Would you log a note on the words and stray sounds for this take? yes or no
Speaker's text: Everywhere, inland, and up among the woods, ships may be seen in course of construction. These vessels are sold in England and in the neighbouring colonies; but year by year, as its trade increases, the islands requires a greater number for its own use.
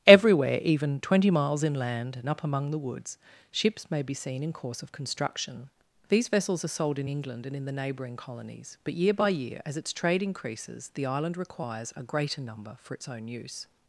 yes